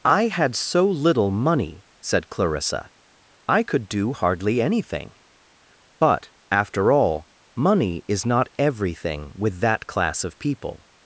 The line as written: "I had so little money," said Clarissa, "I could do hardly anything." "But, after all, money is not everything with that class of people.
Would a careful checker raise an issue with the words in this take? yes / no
no